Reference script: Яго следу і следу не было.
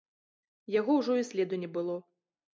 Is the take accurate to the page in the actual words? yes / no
no